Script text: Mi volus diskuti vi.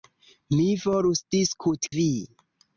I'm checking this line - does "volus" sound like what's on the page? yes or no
yes